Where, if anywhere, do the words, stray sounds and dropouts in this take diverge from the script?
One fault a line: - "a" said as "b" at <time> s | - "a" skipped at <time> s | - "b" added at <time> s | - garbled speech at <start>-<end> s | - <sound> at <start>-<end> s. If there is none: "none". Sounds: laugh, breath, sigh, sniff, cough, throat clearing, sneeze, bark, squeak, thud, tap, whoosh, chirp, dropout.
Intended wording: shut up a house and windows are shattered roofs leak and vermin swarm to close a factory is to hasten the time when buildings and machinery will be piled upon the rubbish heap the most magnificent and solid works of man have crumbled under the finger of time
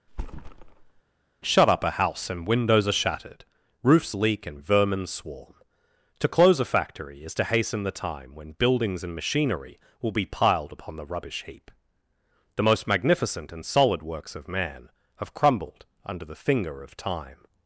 - thud at 0.1-1.0 s